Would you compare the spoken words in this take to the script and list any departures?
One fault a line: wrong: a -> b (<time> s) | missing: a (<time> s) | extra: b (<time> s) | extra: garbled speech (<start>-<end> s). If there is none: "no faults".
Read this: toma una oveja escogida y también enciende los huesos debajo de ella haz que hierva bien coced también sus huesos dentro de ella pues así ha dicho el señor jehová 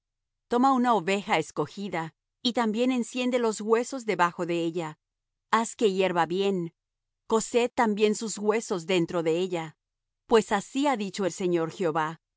no faults